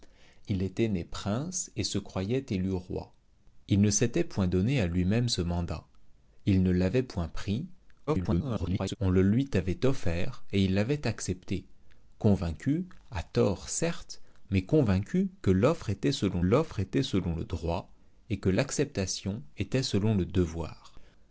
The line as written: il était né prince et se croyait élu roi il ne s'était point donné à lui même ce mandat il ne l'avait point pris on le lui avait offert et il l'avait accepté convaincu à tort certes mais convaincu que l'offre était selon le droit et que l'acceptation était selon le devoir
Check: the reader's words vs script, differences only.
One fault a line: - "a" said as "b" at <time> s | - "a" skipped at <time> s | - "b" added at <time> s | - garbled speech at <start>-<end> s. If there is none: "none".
- garbled speech at 8.1-9.0 s
- "l'offre était selon" added at 16.4 s